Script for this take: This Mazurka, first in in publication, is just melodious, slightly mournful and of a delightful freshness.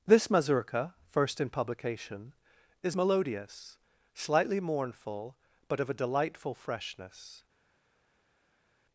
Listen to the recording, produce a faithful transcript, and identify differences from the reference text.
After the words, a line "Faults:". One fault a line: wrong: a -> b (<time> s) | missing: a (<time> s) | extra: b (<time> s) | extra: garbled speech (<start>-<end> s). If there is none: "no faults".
This Mazurka, first in publication, is melodious, slightly mournful but of a delightful freshness.
Faults:
missing: in (1.5 s)
missing: just (3.0 s)
wrong: and -> but (5.7 s)